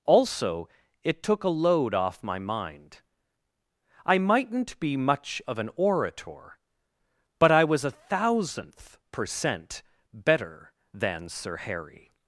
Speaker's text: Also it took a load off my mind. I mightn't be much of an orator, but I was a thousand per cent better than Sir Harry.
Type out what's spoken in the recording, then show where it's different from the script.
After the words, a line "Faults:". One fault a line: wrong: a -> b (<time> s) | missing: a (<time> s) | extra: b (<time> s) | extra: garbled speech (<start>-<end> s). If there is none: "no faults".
Also it took a load off my mind. I mightn't be much of an orator, but I was a thousandth per cent better than Sir Harry.
Faults:
wrong: thousand -> thousandth (7.9 s)